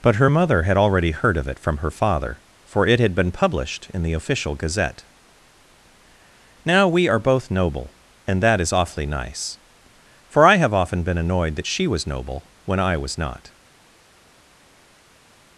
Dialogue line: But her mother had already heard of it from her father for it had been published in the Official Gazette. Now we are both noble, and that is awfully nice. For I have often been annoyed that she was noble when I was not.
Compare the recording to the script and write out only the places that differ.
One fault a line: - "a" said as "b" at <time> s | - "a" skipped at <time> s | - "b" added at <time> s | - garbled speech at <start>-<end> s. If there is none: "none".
none